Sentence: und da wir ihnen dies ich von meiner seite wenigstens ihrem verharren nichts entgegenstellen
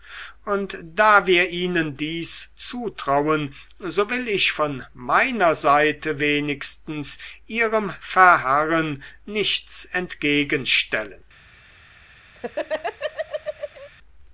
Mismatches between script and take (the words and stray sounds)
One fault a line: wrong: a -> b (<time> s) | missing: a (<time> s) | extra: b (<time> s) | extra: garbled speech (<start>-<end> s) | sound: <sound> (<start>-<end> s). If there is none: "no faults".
extra: zutrauen so will (2.5 s)
sound: laugh (12.3-13.9 s)